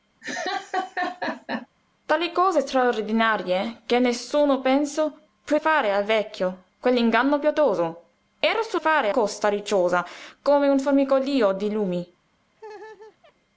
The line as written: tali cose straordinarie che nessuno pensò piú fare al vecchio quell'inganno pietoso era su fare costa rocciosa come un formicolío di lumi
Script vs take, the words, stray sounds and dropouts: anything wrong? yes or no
yes